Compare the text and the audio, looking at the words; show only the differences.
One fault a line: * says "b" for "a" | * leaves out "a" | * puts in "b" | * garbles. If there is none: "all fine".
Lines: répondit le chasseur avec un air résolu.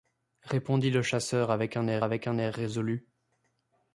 * puts in "avec un air"